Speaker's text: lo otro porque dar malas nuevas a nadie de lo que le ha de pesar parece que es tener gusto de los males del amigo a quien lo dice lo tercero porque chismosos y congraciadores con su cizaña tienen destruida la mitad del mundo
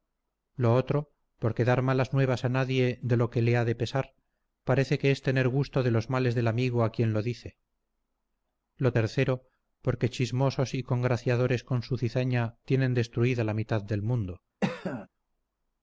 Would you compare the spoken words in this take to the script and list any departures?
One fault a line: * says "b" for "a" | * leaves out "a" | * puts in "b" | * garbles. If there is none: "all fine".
all fine